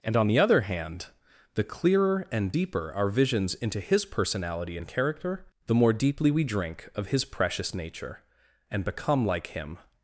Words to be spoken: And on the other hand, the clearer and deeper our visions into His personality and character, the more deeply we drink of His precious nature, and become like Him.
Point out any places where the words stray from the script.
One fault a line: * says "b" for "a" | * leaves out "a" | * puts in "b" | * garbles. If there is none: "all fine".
all fine